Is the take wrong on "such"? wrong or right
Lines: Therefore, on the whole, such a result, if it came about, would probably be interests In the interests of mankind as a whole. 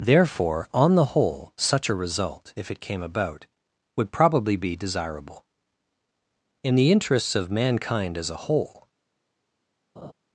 right